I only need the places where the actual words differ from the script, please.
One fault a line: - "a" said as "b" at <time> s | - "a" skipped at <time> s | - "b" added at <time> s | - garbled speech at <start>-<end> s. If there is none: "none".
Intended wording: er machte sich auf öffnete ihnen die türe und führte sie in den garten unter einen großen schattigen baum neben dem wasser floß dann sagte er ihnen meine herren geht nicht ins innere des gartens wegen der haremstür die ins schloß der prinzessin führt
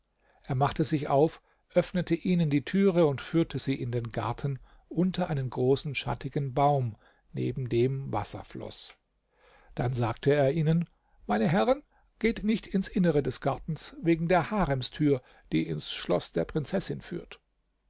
none